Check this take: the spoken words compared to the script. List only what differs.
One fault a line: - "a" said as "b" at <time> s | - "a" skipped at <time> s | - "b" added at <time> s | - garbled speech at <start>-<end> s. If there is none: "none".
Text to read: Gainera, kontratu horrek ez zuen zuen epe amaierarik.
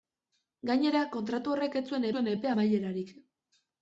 none